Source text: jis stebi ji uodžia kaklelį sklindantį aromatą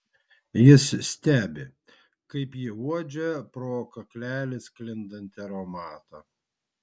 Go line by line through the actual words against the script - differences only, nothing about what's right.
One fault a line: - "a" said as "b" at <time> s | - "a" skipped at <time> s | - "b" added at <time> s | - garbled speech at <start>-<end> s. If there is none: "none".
- "kaip" added at 2.3 s
- "pro" added at 3.6 s